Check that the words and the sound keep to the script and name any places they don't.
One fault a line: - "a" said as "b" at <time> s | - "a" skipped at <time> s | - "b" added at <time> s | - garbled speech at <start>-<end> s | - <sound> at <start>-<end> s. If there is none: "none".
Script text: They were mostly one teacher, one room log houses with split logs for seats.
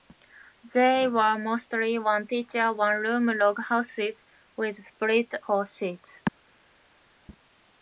- "logs" skipped at 5.3 s